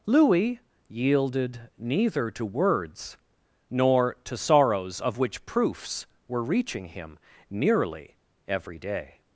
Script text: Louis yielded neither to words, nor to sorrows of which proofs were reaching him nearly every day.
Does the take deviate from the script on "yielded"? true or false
false